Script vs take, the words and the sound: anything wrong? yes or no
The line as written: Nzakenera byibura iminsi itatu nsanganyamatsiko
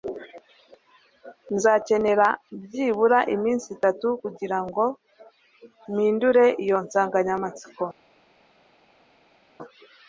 yes